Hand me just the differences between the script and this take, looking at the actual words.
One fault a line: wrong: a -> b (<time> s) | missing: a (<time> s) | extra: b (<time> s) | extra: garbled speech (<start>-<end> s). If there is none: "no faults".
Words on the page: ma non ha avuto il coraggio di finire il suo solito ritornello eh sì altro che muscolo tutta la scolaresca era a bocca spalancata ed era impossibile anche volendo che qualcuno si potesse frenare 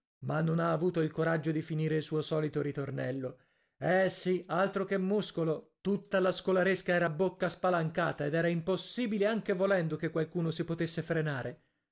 no faults